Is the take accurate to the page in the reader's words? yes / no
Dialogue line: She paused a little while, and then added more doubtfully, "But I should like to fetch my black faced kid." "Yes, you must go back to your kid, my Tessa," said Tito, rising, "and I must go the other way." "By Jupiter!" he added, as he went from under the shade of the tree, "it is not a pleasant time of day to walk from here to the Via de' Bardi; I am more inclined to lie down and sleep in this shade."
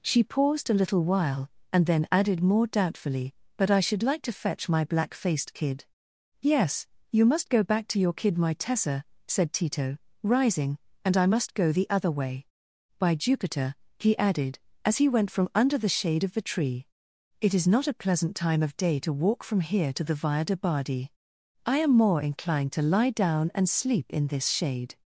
yes